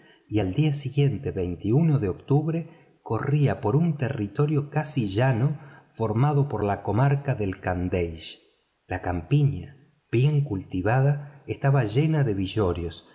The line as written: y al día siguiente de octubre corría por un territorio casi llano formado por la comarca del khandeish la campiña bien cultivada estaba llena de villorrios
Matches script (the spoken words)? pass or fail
pass